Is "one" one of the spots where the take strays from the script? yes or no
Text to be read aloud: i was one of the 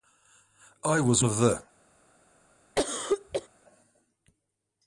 yes